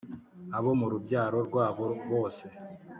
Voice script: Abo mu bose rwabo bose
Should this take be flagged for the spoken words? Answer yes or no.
yes